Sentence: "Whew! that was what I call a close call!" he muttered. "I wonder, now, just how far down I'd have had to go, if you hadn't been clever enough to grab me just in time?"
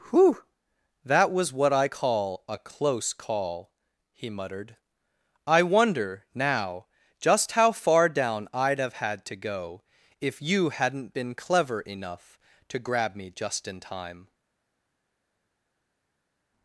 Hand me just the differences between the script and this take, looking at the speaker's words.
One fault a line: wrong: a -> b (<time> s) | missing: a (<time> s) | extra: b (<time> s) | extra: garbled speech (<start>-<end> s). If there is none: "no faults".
no faults